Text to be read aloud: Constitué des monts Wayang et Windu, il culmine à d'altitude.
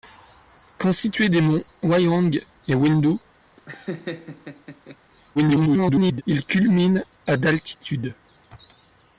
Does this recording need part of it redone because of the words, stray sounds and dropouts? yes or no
yes